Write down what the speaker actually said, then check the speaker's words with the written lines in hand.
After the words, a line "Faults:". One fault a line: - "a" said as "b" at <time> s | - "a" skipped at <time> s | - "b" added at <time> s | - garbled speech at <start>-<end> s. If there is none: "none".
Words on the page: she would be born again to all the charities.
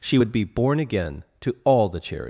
she would be born again to all the charities.
Faults:
none